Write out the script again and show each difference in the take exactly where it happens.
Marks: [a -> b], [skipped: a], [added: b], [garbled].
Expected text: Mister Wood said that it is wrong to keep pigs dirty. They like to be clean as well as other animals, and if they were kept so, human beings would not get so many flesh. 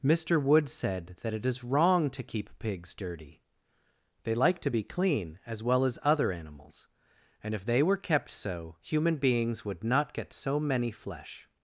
Mister Wood said that it is wrong to keep pigs dirty. They like to be clean as well as other animals, and if they were kept so, human beings would not get so many flesh.